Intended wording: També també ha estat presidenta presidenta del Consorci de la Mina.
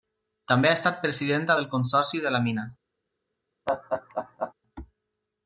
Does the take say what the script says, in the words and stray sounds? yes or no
no